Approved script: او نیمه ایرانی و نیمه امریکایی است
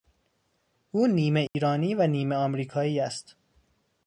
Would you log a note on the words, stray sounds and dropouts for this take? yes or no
yes